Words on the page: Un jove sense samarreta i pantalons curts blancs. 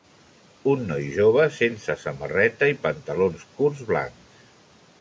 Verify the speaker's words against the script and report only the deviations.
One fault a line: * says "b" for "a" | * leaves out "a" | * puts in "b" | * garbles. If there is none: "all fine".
* puts in "noi"